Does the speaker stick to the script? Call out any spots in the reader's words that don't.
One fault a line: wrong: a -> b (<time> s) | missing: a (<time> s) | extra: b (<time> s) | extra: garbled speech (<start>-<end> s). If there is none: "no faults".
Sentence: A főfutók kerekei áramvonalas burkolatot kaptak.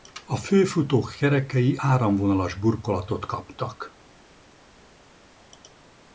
no faults